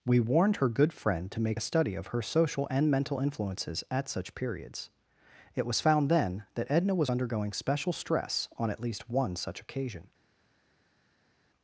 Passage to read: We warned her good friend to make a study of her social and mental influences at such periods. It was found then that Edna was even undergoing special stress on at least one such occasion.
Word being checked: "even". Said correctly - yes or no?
no